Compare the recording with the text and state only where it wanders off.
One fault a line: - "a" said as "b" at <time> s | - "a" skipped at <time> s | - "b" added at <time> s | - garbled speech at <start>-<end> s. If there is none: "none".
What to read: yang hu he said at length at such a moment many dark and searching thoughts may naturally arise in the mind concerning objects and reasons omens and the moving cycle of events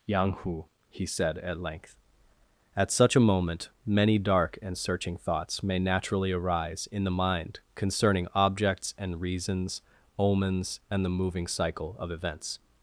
none